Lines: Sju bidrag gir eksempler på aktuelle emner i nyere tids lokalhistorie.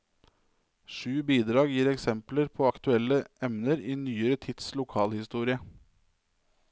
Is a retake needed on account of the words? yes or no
no